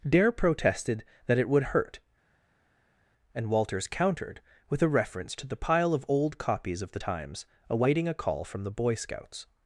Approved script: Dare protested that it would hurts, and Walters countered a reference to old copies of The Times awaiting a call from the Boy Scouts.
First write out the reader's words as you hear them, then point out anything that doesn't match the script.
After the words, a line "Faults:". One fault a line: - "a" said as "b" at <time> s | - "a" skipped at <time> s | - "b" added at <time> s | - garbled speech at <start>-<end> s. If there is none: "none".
Dare protested that it would hurt, and Walters countered with a reference to the pile of old copies of The Times awaiting a call from the Boy Scouts.
Faults:
- "hurts" said as "hurt" at 1.6 s
- "with" added at 4.7 s
- "the pile of" added at 5.5 s